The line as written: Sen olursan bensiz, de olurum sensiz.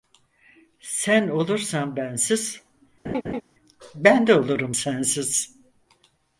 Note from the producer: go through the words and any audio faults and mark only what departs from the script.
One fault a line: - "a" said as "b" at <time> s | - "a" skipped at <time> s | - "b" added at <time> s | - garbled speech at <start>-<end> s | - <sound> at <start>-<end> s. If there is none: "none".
- laugh at 3.0-3.4 s
- "ben" added at 3.9 s